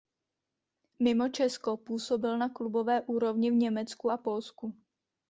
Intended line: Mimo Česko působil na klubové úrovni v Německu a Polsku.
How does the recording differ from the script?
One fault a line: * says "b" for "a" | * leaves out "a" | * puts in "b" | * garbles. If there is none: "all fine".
all fine